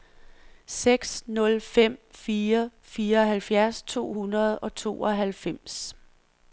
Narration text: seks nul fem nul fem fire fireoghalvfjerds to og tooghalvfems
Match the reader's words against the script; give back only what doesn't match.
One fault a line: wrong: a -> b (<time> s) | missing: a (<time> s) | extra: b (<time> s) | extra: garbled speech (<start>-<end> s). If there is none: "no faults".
missing: nul fem (2.0 s)
extra: hundrede (4.1 s)